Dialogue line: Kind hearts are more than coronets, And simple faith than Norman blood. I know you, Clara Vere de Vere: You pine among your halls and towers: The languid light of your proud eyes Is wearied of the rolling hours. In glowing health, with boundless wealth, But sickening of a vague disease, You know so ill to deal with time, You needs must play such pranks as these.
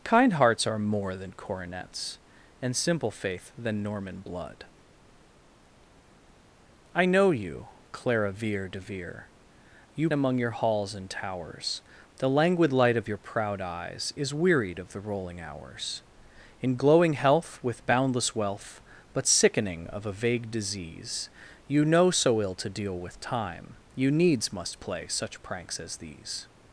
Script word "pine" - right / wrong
wrong